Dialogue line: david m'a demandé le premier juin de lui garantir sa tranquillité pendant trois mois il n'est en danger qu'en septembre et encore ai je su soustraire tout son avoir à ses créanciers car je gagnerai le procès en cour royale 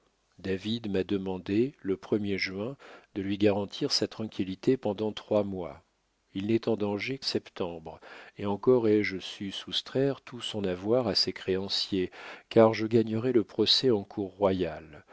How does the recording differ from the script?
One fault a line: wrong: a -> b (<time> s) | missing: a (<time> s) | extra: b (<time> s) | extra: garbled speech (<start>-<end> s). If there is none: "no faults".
missing: qu'en (7.2 s)